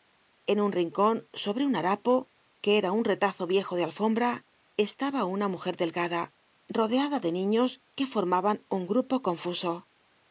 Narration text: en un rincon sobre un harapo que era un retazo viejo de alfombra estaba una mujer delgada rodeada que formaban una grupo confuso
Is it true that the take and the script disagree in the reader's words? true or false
true